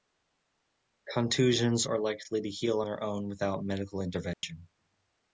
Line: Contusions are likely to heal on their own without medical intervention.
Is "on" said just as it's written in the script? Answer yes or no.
no